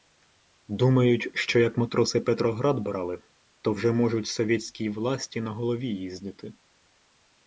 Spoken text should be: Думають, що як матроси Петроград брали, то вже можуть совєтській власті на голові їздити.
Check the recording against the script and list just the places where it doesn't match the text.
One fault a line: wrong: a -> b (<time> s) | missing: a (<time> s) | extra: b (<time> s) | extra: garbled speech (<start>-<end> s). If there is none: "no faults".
no faults